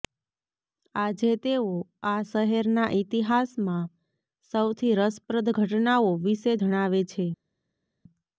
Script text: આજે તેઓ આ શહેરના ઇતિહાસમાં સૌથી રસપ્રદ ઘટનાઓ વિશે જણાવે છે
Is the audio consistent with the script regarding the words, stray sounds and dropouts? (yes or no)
yes